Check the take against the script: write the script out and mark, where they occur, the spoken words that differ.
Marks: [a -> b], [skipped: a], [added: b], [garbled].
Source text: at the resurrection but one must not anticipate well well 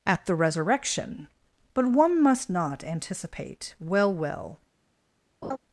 at the resurrection but one must not anticipate well well